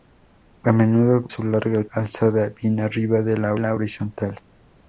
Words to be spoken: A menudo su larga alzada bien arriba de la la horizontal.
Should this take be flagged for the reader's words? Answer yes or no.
no